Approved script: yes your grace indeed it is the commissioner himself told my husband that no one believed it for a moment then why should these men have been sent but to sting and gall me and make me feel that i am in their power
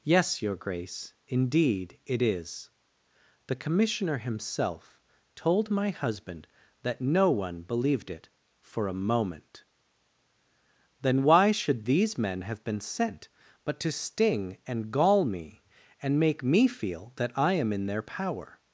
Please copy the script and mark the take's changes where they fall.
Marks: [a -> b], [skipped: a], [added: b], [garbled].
yes your grace indeed it is the commissioner himself told my husband that no one believed it for a moment then why should these men have been sent but to sting and gall me and make me feel that i am in their power